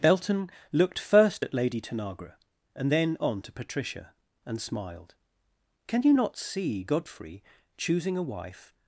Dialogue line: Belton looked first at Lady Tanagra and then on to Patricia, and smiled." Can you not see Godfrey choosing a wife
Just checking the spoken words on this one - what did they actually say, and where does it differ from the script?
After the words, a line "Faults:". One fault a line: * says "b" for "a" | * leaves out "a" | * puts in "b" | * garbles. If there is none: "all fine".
Belton looked first at Lady Tanagra and then on to Patricia, and smiled." Can you not see Godfrey choosing a wife
Faults:
all fine